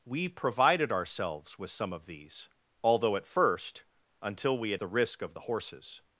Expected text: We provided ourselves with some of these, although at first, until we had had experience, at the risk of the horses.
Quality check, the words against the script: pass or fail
fail